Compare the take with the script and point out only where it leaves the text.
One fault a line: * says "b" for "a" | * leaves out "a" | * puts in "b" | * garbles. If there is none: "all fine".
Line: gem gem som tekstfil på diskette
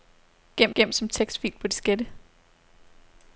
all fine